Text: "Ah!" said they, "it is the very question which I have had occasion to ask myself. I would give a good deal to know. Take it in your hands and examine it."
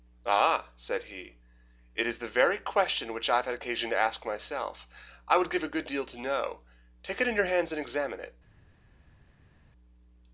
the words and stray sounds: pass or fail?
fail